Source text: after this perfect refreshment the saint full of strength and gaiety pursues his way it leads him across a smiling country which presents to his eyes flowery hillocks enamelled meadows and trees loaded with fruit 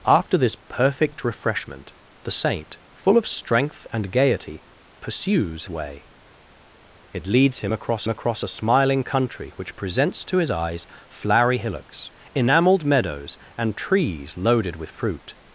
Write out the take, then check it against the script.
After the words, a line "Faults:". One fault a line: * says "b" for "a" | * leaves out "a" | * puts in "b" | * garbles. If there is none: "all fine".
after this perfect refreshment the saint full of strength and gaiety pursues way it leads him across across a smiling country which presents to his eyes flowery hillocks enamelled meadows and trees loaded with fruit
Faults:
* leaves out "his"
* puts in "across"